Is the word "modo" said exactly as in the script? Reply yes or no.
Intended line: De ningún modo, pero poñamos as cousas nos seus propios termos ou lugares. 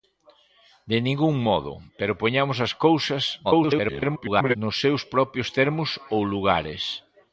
yes